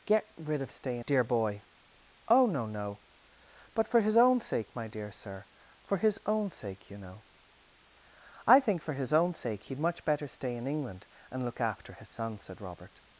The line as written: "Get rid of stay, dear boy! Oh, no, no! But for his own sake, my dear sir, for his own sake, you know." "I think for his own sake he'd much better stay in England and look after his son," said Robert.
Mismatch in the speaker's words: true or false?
false